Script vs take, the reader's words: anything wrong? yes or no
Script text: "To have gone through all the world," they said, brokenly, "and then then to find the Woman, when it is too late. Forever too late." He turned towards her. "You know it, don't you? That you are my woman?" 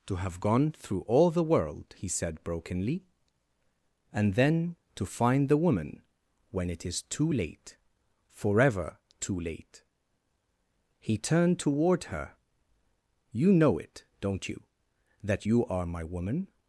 yes